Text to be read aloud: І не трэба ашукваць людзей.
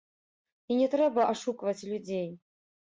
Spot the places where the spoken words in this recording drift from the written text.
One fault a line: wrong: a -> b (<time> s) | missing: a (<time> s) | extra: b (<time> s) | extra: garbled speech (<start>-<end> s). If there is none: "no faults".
no faults